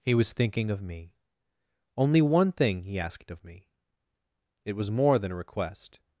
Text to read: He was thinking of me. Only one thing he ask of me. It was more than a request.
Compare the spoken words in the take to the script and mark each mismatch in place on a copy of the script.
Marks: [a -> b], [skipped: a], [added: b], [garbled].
He was thinking of me. Only one thing he [ask -> asked] of me. It was more than a request.